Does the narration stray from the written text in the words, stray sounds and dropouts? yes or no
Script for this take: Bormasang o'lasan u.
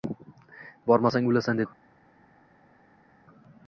no